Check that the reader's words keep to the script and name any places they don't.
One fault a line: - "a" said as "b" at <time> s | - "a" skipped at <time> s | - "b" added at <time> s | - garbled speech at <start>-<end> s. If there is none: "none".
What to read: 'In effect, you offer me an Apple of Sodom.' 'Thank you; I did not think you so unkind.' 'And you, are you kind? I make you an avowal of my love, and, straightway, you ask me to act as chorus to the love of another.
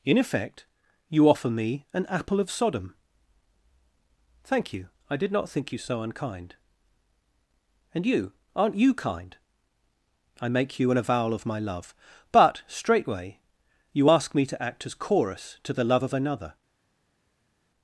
- "are" said as "aren't" at 8.6 s
- "and" said as "but" at 12.3 s